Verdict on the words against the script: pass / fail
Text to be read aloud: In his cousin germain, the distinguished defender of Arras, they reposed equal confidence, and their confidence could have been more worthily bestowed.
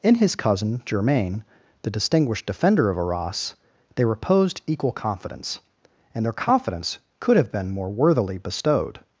pass